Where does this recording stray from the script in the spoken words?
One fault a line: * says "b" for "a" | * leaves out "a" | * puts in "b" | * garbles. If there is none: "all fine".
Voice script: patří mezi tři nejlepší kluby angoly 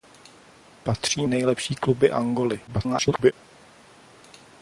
* leaves out "mezi tři"
* garbles